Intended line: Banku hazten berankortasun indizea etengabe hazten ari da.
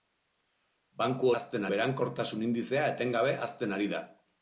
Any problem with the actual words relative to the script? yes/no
no